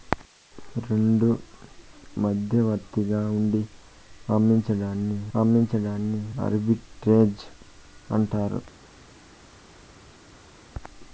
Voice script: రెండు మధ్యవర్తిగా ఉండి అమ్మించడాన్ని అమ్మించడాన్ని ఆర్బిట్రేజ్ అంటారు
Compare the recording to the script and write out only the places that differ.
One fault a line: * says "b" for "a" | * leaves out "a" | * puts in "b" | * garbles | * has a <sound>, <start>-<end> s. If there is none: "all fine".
all fine